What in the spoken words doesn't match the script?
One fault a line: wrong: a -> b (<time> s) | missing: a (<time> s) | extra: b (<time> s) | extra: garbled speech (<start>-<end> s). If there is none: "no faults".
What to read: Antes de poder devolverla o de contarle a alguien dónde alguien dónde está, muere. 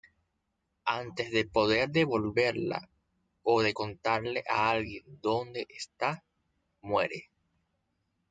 missing: alguien dónde (5.7 s)